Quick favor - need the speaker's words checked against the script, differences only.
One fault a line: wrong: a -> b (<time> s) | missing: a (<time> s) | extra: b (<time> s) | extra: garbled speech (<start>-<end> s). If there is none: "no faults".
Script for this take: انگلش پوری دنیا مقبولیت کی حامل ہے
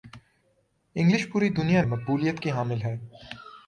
no faults